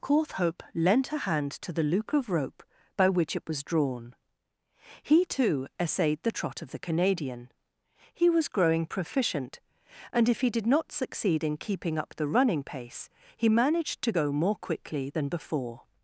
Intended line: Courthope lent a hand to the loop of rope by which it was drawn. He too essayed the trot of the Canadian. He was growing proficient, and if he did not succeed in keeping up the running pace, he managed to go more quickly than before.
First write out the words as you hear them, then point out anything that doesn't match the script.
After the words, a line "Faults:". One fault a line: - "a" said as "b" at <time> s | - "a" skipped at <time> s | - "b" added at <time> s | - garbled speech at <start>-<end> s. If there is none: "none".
Courthope lent a hand to the loop of rope by which it was drawn. He too essayed the trot of the Canadian. He was growing proficient, and if he did not succeed in keeping up the running pace, he managed to go more quickly than before.
Faults:
none